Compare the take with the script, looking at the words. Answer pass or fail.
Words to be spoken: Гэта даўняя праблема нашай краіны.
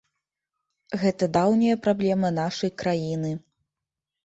pass